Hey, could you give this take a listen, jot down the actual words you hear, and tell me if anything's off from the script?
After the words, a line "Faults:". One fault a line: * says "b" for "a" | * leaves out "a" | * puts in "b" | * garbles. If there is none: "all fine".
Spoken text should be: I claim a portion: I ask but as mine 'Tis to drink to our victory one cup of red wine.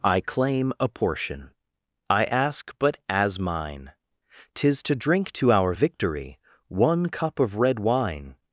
I claim a portion: I ask but as mine 'Tis to drink to our victory one cup of red wine.
Faults:
all fine